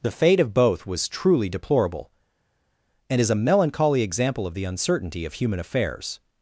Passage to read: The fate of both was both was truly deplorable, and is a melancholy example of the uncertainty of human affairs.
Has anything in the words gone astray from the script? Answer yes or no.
yes